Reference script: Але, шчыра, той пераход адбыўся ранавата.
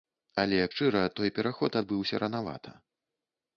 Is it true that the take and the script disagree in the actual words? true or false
false